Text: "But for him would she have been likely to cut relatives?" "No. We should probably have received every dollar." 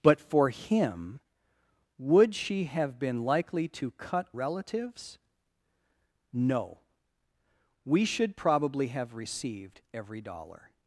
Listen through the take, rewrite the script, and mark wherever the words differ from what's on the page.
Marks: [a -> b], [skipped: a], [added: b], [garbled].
"But for him would she have been likely to cut relatives?" "No. We should probably have received every dollar."